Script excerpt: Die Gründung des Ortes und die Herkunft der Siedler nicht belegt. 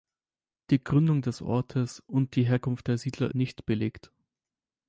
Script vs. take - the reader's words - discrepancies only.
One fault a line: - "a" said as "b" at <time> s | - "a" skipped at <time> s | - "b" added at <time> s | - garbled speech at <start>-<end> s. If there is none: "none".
none